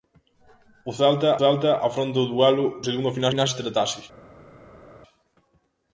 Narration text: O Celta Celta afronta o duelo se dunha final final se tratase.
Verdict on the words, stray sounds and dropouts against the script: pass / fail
pass